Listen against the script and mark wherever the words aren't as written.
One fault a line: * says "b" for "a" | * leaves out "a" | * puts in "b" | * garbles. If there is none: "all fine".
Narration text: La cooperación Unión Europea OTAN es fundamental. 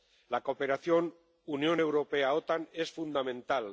all fine